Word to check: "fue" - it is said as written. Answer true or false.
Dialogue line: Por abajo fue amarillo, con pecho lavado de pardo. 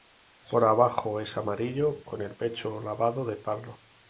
false